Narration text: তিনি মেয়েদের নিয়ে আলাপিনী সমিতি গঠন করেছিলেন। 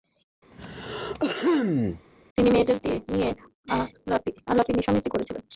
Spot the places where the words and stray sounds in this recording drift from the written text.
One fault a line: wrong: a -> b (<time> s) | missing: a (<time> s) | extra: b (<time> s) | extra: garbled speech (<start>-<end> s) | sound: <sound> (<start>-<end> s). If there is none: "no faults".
sound: throat clearing (0.5-2.1 s)
missing: গঠন (5.1 s)